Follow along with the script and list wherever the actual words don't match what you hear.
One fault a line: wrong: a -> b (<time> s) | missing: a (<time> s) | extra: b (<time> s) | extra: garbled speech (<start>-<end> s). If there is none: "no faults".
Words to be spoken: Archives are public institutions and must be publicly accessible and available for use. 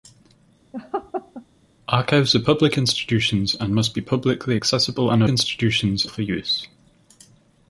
wrong: available -> institutions (5.3 s)